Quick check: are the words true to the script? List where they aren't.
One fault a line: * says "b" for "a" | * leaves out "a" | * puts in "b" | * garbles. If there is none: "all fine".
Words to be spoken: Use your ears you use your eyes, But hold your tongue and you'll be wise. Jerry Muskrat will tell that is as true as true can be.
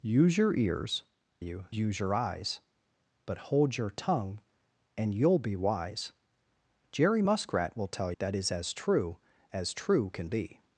all fine